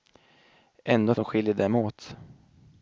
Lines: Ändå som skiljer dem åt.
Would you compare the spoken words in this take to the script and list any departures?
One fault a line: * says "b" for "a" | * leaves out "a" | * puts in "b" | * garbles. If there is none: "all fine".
all fine